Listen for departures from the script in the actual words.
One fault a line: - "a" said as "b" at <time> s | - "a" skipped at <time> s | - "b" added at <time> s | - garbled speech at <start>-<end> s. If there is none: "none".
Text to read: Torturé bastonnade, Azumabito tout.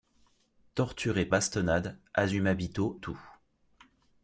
none